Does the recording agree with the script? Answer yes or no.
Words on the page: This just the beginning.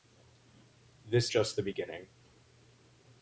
yes